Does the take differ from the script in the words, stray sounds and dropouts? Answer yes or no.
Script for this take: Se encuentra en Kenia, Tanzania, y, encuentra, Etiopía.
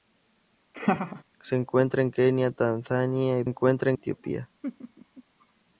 yes